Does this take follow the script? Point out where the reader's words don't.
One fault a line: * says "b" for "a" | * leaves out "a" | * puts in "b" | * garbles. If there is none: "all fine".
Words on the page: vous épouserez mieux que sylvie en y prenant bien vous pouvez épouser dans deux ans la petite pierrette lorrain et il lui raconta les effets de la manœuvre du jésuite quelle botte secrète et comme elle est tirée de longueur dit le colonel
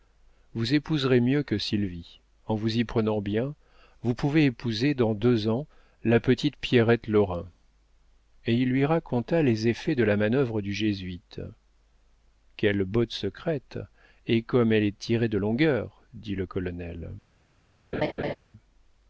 * puts in "vous"